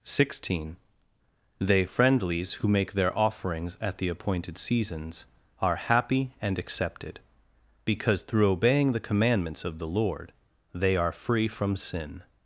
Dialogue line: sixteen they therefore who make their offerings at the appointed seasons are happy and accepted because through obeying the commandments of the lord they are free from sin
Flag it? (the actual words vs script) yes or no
yes